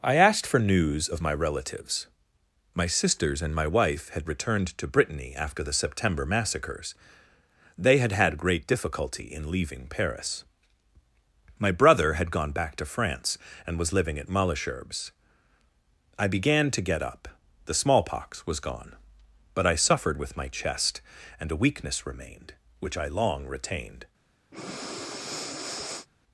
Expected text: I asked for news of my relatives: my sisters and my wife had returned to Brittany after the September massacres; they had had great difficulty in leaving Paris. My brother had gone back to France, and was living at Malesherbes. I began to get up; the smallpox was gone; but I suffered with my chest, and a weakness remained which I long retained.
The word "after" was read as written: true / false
true